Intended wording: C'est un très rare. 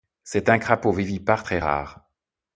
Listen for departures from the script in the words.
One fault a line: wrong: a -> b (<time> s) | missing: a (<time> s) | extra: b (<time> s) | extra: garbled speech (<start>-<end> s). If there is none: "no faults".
extra: crapaud vivipare (0.6 s)